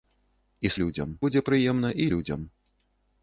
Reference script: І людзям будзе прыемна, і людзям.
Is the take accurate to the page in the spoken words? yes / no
yes